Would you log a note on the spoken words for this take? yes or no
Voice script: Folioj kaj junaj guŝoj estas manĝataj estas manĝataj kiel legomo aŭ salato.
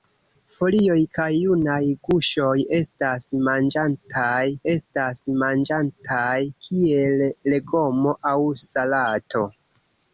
no